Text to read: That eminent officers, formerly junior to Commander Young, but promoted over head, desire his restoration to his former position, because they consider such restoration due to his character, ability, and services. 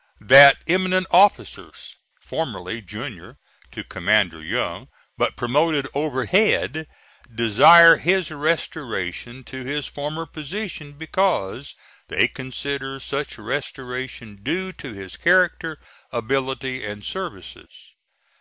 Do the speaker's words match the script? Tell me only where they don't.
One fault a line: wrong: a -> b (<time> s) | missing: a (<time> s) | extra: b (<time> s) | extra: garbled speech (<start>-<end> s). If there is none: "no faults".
no faults